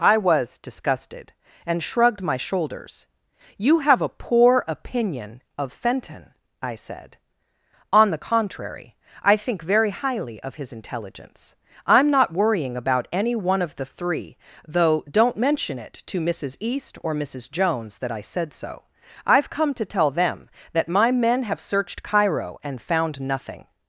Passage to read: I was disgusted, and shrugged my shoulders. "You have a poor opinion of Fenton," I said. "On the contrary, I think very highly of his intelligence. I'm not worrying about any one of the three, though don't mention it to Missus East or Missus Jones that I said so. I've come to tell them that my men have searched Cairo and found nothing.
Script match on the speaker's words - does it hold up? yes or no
yes